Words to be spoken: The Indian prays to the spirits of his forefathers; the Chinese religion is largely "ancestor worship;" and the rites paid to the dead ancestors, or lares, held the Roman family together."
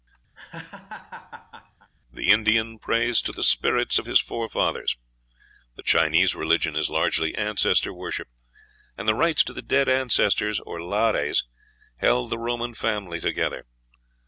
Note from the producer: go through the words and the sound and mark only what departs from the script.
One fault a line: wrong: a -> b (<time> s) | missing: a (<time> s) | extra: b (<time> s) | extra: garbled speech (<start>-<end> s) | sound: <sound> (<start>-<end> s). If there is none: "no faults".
sound: laugh (0.3-1.9 s)
missing: paid (9.4 s)